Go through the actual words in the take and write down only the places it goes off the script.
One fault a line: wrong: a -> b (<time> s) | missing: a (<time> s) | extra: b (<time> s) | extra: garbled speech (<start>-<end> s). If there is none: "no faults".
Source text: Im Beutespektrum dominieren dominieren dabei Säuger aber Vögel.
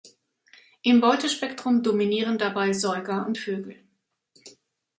missing: dominieren (2.4 s)
wrong: aber -> und (3.3 s)